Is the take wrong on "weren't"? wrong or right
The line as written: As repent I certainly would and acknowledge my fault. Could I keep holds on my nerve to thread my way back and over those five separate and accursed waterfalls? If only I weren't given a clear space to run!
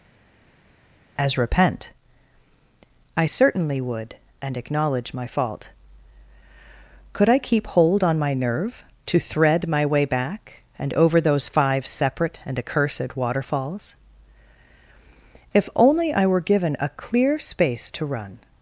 wrong